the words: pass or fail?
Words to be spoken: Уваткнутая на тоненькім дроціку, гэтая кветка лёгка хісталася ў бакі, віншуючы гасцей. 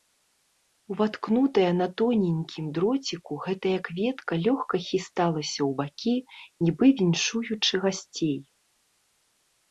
fail